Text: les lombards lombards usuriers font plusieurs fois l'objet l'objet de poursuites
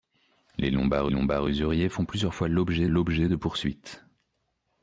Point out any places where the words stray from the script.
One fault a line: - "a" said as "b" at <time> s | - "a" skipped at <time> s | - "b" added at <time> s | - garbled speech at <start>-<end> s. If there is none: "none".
none